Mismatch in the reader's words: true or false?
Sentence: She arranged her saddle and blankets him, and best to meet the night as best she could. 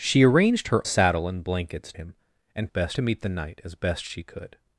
false